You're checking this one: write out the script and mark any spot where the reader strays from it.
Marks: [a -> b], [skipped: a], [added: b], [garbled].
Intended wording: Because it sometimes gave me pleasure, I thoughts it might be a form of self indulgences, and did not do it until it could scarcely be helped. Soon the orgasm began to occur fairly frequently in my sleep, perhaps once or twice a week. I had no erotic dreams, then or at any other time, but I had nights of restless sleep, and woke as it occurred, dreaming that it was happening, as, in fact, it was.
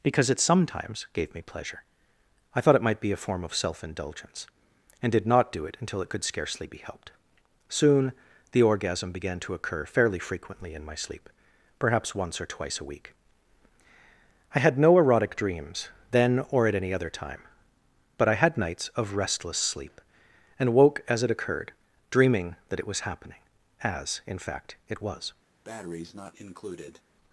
Because it sometimes gave me pleasure, I [thoughts -> thought] it might be a form of self [indulgences, -> indulgence] and did not do it until it could scarcely be helped. Soon the orgasm began to occur fairly frequently in my sleep, perhaps once or twice a week. I had no erotic dreams, then or at any other time, but I had nights of restless sleep, and woke as it occurred, dreaming that it was happening, as, in fact, it was.